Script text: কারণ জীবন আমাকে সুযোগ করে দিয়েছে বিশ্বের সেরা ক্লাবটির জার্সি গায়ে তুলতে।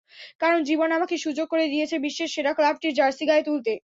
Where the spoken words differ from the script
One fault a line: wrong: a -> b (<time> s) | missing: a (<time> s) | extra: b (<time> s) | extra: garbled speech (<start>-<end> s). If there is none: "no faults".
no faults